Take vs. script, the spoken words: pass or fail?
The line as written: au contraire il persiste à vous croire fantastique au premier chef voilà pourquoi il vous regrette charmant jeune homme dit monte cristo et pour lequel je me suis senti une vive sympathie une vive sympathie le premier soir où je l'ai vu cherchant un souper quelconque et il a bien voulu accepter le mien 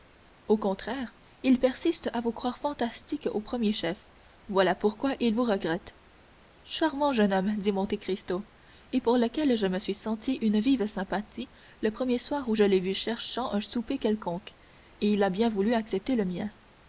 fail